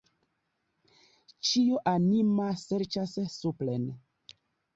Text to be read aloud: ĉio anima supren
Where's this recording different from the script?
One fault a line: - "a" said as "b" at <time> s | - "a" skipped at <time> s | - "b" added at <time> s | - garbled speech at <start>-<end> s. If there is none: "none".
- "serĉas" added at 2.6 s